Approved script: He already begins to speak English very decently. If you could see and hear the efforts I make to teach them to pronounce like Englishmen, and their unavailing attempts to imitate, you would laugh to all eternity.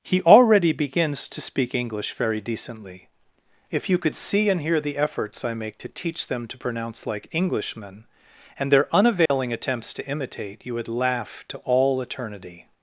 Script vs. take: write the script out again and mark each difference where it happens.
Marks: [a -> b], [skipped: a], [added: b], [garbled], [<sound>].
He already begins to speak English very decently. If you could see and hear the efforts I make to teach them to pronounce like Englishmen, and their unavailing [dropout] attempts to imitate, you would laugh to all eternity.